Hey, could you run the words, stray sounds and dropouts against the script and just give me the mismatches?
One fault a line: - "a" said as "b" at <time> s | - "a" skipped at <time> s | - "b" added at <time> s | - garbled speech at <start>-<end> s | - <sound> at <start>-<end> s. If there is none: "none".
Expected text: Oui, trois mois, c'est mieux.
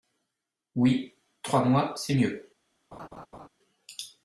- laugh at 2.9-3.5 s